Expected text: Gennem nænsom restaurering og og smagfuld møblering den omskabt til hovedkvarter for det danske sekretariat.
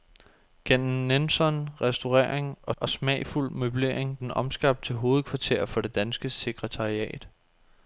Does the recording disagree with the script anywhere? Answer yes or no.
no